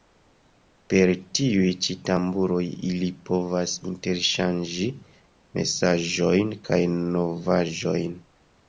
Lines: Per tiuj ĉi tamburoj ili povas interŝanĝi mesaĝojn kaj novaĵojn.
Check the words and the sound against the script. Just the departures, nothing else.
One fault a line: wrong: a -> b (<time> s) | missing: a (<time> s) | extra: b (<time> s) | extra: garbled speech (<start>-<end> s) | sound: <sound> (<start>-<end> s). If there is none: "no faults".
no faults